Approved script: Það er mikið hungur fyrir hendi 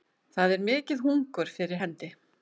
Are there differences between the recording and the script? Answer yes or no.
no